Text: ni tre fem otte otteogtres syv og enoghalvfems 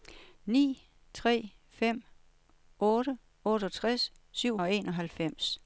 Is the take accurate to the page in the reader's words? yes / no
yes